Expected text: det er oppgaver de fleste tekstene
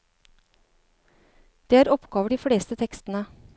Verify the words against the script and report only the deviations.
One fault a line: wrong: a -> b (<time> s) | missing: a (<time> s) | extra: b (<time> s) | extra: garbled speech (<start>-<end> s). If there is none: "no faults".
no faults